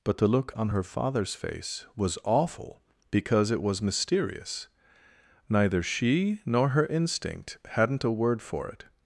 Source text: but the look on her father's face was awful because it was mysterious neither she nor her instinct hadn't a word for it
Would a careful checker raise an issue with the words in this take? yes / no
no